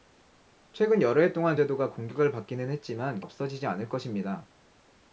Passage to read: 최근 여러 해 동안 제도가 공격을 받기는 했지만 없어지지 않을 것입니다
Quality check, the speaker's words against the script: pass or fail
pass